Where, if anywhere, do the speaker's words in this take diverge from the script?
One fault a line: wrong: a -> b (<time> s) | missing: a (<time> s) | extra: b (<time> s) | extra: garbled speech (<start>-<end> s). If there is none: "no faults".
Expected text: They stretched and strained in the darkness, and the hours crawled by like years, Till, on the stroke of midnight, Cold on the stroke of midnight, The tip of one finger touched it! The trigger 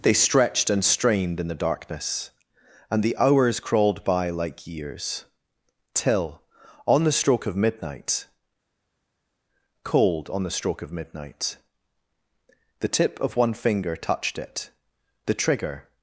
no faults